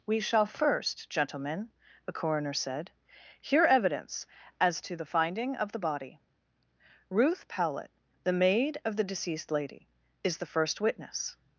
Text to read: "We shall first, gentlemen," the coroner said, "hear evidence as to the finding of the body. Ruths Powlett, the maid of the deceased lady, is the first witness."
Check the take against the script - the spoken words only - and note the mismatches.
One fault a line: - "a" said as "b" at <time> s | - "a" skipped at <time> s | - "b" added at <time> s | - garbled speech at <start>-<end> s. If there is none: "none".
- "Ruths" said as "Ruth" at 7.1 s